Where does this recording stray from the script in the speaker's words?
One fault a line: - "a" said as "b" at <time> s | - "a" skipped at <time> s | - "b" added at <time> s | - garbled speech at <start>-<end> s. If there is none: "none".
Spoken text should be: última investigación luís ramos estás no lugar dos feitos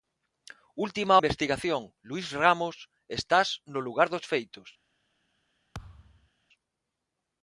none